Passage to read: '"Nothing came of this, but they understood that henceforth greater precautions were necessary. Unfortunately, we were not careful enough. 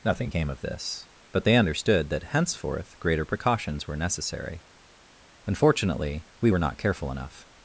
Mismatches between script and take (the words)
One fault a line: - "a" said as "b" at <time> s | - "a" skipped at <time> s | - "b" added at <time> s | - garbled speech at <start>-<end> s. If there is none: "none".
none